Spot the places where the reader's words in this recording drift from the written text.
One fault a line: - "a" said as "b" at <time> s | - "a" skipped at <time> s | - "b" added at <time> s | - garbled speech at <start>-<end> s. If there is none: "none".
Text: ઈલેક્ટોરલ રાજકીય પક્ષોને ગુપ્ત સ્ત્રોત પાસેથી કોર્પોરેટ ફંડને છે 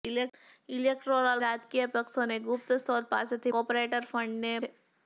none